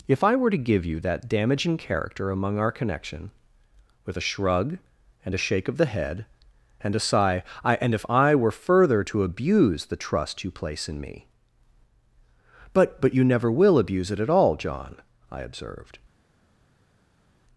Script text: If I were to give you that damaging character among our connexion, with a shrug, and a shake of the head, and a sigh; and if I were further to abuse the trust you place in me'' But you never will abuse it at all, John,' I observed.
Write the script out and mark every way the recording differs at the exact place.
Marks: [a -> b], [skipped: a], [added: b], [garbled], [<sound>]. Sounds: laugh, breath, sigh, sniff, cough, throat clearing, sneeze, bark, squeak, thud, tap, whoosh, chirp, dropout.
If I were to give you that damaging character among our [connexion, -> connection] with a shrug, and a shake of the head, and a sigh; [added: I] and if I were further to abuse the trust you place in me'' But [added: but] you never will abuse it at all, John,' I observed.